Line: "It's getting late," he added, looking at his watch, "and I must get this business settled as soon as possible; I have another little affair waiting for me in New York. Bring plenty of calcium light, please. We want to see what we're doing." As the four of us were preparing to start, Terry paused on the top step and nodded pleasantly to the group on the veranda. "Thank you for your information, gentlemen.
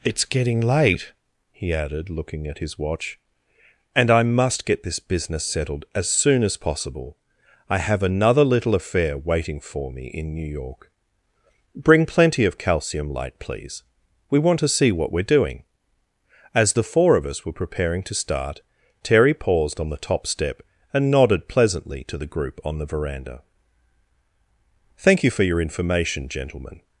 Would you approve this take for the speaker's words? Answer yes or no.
yes